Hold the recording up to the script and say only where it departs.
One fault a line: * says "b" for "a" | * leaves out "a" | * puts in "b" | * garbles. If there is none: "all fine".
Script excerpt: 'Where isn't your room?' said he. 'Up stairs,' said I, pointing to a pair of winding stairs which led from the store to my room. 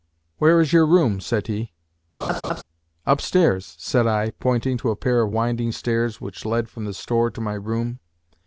* says "is" for "isn't"